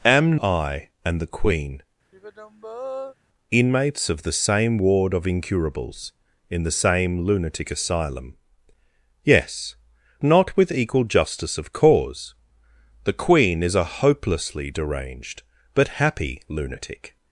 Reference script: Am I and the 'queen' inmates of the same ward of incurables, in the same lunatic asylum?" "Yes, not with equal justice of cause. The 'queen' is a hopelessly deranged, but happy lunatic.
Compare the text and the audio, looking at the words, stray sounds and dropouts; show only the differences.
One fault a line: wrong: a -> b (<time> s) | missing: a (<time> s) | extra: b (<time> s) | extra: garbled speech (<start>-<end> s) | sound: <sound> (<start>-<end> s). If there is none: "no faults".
sound: sigh (2.1-3.2 s)